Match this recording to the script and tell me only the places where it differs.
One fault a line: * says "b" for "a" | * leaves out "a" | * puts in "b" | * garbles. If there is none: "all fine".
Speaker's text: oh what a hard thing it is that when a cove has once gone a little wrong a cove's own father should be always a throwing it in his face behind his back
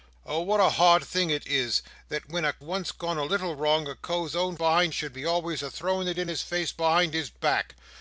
* leaves out "cove has"
* says "behind" for "father"